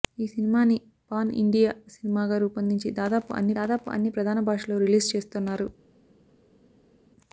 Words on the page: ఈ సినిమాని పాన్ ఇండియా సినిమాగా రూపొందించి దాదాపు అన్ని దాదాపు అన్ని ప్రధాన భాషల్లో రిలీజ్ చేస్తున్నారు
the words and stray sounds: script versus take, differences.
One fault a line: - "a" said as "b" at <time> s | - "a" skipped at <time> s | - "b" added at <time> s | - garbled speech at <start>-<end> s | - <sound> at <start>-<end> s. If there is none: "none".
none